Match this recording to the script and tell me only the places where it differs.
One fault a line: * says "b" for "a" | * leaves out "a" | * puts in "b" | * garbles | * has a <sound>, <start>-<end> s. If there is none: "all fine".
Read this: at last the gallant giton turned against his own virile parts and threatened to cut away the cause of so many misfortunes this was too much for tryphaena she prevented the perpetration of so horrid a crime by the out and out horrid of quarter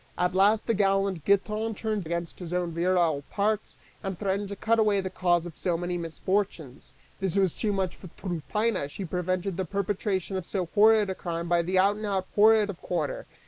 all fine